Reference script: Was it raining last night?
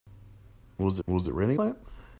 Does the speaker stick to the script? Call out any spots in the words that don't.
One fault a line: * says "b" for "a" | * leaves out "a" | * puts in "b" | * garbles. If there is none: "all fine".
* puts in "was"
* leaves out "last"